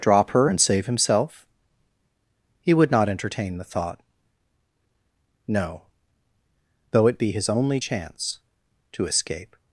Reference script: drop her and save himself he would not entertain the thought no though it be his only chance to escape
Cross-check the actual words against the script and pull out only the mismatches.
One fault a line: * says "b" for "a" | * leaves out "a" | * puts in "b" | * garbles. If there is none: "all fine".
all fine